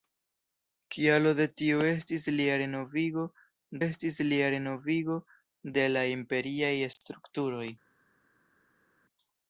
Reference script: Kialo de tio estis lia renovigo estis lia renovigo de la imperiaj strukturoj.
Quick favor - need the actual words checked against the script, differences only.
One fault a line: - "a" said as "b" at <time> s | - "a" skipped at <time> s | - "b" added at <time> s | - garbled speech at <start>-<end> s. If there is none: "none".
none